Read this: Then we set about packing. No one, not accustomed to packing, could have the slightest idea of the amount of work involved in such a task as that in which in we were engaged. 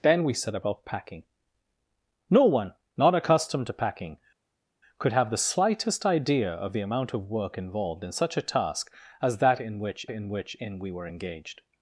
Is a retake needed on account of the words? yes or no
yes